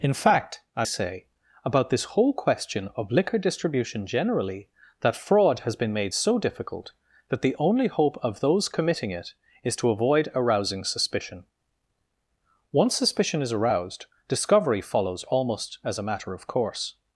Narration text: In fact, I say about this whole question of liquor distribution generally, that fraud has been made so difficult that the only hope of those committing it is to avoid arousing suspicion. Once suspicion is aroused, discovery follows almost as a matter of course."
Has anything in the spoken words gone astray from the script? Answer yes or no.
no